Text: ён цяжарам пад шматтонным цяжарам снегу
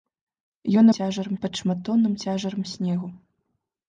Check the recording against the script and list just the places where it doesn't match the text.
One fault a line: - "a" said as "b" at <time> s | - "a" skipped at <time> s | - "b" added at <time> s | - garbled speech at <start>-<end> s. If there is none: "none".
none